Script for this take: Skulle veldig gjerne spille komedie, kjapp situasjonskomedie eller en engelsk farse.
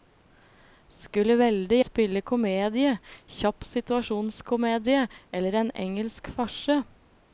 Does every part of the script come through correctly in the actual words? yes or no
no